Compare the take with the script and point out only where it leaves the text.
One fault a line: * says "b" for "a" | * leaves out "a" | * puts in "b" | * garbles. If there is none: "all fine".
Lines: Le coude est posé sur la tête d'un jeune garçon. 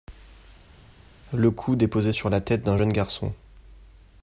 all fine